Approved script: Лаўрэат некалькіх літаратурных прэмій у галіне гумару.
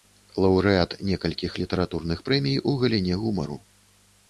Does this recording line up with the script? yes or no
yes